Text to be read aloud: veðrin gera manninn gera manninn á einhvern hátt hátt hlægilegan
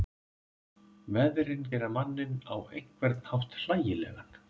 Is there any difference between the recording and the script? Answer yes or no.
yes